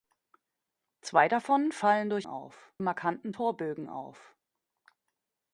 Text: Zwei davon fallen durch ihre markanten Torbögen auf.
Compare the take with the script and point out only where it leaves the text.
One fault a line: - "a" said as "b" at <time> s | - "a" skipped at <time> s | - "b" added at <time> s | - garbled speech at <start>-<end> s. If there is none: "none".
- "ihre" said as "auf" at 2.2 s